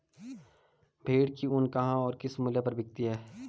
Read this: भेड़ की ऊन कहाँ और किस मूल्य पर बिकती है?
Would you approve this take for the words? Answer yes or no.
yes